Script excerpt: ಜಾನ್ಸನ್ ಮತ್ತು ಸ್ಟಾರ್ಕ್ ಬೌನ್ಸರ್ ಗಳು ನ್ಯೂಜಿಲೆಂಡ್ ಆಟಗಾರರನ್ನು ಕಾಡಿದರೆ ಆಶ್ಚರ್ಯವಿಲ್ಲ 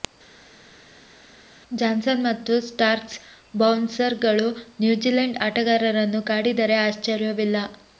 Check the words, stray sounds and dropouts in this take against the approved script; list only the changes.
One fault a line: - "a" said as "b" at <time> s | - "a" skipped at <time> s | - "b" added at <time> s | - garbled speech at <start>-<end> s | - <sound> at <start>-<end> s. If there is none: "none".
none